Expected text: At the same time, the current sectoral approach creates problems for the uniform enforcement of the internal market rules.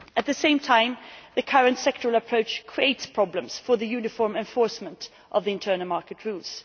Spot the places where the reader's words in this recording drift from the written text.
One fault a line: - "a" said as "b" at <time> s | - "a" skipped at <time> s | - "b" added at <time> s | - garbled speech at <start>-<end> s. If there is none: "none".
none